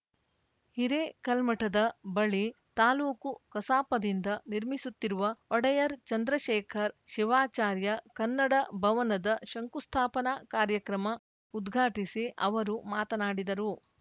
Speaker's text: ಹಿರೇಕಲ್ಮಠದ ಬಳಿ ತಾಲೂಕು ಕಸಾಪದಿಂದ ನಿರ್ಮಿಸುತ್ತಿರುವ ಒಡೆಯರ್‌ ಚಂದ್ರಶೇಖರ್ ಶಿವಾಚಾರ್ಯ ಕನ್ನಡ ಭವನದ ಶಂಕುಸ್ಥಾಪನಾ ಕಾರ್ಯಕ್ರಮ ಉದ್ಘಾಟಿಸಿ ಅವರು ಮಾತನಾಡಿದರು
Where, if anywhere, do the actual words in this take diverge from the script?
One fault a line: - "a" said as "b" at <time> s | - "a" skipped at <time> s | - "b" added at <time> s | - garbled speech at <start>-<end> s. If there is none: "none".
none